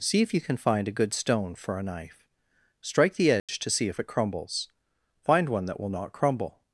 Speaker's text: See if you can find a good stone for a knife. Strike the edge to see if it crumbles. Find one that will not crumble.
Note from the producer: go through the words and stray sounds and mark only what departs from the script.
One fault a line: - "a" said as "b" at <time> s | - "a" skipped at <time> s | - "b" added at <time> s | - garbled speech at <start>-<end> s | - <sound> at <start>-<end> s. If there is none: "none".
- dropout at 3.4-3.5 s